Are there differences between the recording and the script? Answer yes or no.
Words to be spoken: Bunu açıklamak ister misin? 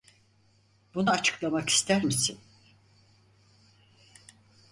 no